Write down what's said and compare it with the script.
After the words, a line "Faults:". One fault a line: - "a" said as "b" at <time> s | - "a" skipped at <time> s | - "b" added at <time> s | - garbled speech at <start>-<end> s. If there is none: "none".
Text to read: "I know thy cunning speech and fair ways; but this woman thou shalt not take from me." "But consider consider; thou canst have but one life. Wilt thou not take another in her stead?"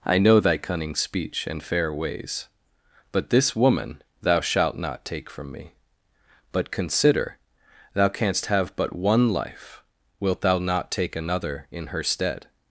"I know thy cunning speech and fair ways; but this woman thou shalt not take from me." "But consider; thou canst have but one life. Wilt thou not take another in her stead?"
Faults:
- "consider" skipped at 7.4 s